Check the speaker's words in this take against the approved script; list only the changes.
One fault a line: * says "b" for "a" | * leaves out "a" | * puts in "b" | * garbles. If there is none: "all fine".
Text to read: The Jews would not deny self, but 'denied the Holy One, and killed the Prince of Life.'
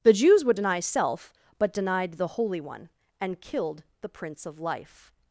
* leaves out "not"